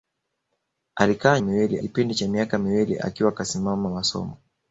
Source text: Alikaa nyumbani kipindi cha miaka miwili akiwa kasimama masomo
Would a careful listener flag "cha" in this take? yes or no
no